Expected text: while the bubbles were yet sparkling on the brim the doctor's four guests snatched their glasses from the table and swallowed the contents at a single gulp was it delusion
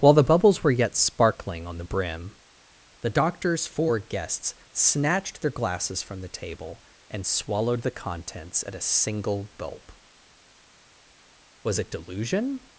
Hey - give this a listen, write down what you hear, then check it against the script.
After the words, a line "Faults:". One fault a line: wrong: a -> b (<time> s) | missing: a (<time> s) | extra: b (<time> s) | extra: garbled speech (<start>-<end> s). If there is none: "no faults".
while the bubbles were yet sparkling on the brim the doctor's four guests snatched their glasses from the table and swallowed the contents at a single gulp was it delusion
Faults:
no faults